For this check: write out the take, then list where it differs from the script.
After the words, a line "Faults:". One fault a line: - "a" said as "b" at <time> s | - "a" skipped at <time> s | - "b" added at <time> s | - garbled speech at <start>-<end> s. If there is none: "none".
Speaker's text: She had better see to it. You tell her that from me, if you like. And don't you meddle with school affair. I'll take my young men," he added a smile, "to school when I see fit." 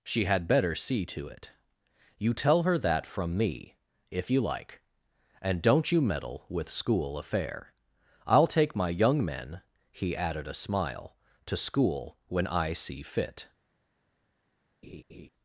She had better see to it. You tell her that from me, if you like. And don't you meddle with school affair. I'll take my young men," he added a smile, "to school when I see fit."
Faults:
none